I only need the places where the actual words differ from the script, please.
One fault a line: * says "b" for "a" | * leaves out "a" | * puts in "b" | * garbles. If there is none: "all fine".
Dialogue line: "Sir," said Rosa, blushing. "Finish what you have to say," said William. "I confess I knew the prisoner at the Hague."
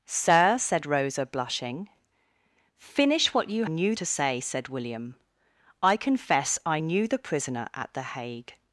* says "knew" for "have"